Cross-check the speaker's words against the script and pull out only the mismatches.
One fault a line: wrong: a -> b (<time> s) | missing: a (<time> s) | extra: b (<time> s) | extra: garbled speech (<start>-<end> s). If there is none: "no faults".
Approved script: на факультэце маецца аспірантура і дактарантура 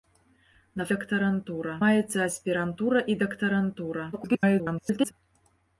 wrong: факультэце -> дактарантура (0.9 s)
extra: garbled speech (4.1-5.1 s)